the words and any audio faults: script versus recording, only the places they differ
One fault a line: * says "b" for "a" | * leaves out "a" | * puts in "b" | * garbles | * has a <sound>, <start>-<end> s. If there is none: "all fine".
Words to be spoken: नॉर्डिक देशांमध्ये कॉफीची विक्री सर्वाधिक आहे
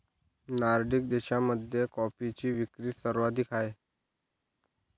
all fine